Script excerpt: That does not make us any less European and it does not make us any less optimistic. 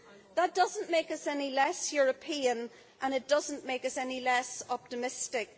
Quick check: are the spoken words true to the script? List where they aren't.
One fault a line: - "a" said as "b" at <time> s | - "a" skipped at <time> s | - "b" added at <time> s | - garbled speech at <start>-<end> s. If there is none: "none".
none